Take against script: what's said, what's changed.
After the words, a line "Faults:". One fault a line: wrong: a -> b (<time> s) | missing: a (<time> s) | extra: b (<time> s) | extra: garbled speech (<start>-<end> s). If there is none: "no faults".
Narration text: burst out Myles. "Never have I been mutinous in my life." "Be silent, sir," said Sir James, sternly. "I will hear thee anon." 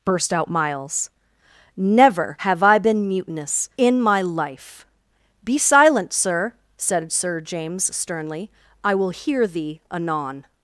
burst out Myles. "Never have I been mutinous in my life." "Be silent, sir," said Sir James, sternly. "I will hear thee anon."
Faults:
no faults